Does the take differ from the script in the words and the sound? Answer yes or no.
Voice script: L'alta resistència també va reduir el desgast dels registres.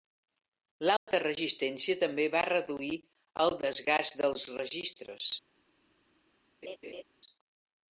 yes